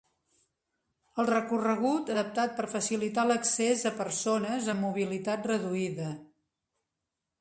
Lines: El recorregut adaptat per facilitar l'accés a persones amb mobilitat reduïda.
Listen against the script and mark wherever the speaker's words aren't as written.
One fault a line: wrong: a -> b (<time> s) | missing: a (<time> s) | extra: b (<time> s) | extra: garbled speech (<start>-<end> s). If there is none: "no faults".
no faults